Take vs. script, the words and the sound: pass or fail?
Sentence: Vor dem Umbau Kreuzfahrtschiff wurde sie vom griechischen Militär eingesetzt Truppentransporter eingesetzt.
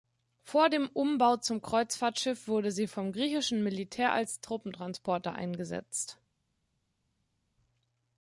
fail